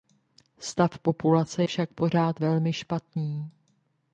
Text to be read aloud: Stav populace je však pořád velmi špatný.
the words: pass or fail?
fail